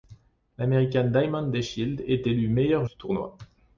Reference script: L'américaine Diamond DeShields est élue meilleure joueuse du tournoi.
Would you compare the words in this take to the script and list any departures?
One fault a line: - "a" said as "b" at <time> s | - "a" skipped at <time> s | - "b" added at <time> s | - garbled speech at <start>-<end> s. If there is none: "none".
- "joueuse" skipped at 2.9 s